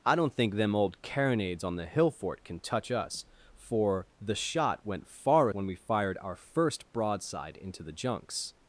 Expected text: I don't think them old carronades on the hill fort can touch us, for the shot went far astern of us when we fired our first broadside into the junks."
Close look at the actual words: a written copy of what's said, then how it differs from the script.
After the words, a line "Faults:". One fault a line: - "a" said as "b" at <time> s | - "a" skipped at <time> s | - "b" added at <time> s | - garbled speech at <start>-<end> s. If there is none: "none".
I don't think them old carronades on the hill fort can touch us, for the shot went far when we fired our first broadside into the junks."
Faults:
- "astern of us" skipped at 5.5 s